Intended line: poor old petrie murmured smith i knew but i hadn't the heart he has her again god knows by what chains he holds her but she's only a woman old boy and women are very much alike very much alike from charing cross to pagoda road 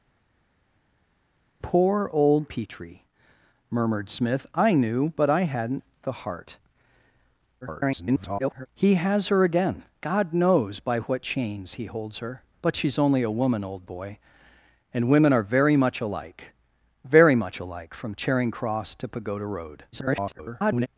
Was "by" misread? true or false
false